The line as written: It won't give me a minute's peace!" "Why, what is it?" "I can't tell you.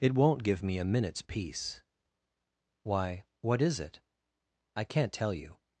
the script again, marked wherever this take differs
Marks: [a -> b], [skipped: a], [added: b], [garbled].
It won't give me a minute's peace!" "Why, what is it?" "I can't tell you.